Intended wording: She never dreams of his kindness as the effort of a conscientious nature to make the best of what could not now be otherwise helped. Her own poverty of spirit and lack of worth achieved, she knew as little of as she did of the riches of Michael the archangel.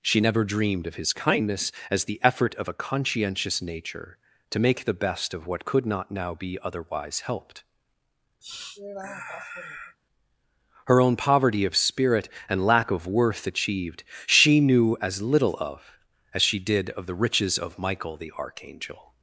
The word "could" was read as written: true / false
true